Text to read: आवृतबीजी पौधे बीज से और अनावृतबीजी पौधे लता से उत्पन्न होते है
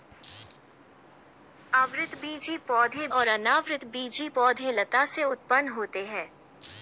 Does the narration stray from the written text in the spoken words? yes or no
yes